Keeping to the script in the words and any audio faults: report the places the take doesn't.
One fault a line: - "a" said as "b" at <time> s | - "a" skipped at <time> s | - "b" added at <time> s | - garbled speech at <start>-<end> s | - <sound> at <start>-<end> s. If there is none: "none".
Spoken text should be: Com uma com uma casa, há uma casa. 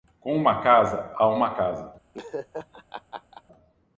- "com uma" skipped at 0.6 s
- laugh at 2.1-3.4 s